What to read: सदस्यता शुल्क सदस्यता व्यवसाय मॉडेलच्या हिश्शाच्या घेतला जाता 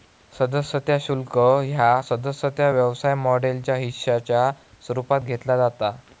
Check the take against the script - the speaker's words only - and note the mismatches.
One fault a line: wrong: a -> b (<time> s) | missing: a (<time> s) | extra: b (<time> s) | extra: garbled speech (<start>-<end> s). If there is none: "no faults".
extra: ह्या (1.6 s)
extra: स्वरूपात (4.8 s)